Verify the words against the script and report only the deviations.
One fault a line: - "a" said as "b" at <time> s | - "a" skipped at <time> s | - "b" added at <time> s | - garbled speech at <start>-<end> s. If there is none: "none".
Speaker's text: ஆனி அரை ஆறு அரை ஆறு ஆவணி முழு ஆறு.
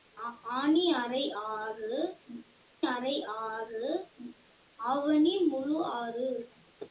none